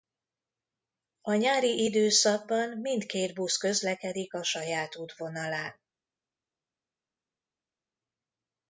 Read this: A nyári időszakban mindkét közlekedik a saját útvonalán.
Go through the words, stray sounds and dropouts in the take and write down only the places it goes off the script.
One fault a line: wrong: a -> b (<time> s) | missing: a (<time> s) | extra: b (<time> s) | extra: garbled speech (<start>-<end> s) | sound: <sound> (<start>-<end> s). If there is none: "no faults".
extra: busz (3.3 s)